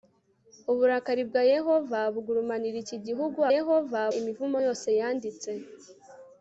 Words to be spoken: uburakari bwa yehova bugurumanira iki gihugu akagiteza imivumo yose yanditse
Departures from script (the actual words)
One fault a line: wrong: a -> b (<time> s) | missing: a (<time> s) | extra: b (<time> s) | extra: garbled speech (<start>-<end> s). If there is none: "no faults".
wrong: akagiteza -> yehova (3.5 s)